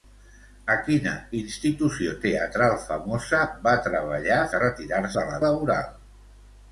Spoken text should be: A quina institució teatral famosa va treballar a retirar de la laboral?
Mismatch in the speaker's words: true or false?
false